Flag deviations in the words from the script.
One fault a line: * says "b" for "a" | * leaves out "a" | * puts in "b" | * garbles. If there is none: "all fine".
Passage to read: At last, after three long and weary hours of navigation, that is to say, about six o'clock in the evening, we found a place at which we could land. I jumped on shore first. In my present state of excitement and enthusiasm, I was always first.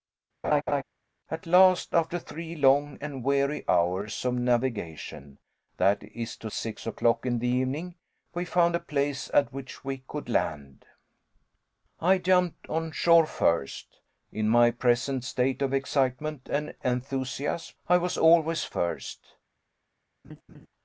* leaves out "say about"